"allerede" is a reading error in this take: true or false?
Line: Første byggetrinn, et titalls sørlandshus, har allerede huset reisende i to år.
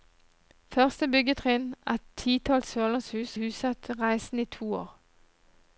true